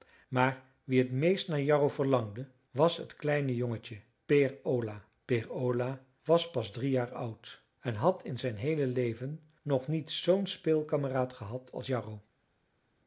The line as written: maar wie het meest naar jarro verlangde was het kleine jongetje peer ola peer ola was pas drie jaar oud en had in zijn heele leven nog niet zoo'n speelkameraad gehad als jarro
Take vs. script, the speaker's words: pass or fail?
pass